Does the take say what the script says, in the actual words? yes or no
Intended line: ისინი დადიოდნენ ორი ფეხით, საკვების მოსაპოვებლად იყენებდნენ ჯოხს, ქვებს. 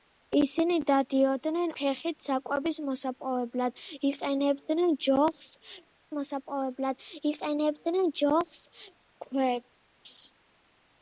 no